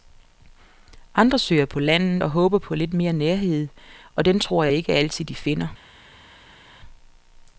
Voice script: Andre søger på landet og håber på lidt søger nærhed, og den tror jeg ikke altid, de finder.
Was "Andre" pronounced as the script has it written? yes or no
yes